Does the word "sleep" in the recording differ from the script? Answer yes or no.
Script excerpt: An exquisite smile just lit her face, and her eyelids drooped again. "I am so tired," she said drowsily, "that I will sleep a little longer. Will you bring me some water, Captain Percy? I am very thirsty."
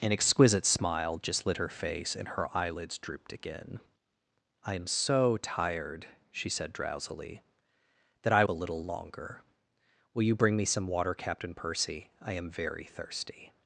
yes